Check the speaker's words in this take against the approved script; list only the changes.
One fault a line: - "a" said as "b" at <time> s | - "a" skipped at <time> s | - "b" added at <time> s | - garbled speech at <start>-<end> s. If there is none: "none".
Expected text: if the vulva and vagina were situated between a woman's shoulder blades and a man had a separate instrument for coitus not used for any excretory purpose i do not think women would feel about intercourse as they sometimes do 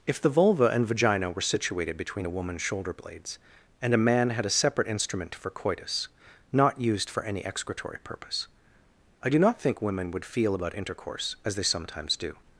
none